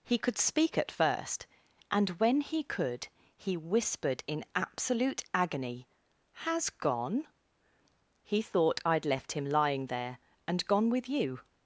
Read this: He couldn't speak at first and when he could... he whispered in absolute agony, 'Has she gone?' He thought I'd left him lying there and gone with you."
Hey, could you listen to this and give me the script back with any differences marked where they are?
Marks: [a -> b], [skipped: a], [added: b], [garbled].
He [couldn't -> could] speak at first and when he could... he whispered in absolute agony, 'Has [skipped: she] gone?' He thought I'd left him lying there and gone with you."